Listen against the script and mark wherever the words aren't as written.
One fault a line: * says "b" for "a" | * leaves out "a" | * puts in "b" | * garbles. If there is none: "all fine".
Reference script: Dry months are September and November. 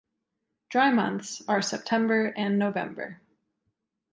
all fine